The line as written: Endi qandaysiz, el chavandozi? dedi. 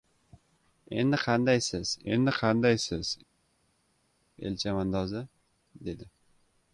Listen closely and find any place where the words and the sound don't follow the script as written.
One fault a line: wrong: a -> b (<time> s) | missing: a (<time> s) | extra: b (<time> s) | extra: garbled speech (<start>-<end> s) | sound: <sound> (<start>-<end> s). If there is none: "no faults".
extra: endi qandaysiz (2.1 s)